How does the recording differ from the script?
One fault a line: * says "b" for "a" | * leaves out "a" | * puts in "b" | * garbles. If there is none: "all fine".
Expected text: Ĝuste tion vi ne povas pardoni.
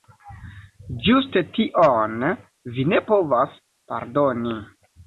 all fine